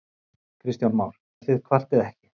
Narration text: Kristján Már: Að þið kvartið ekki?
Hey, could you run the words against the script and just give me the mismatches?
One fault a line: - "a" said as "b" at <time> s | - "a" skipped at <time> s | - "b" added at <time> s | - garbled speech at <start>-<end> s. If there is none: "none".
none